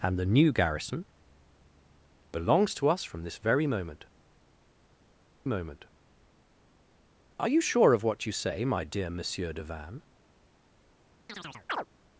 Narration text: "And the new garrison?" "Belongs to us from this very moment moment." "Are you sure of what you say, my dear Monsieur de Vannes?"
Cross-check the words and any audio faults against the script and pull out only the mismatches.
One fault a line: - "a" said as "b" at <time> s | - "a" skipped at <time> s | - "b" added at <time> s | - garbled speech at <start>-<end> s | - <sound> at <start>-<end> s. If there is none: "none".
- chirp at 11.3-11.9 s